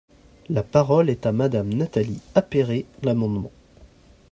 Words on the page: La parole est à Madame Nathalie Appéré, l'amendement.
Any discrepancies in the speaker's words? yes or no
no